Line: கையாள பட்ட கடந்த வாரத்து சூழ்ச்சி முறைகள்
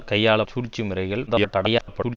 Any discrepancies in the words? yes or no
yes